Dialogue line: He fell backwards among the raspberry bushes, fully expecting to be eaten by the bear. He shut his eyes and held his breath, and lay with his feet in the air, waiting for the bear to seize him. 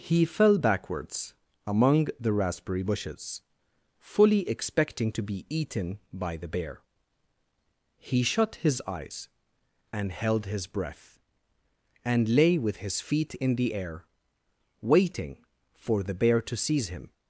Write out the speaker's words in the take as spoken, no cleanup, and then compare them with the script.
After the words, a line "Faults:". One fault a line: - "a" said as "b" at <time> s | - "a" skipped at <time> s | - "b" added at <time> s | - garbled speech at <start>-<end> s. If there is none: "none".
He fell backwards among the raspberry bushes, fully expecting to be eaten by the bear. He shut his eyes and held his breath, and lay with his feet in the air, waiting for the bear to seize him.
Faults:
none